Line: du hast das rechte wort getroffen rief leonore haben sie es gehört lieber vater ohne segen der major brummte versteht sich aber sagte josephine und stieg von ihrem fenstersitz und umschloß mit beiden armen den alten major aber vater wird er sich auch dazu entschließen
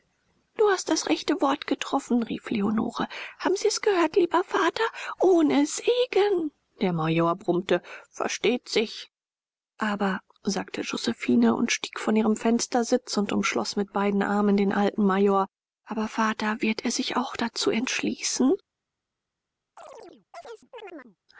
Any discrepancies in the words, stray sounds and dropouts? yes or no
yes